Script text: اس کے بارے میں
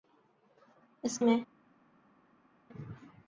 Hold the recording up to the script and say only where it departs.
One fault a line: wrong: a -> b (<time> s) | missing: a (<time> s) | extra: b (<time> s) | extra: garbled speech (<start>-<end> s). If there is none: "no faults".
missing: کے بارے (1.2 s)